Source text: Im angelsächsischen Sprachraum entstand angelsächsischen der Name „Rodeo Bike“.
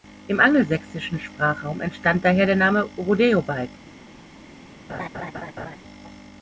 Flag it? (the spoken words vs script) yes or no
yes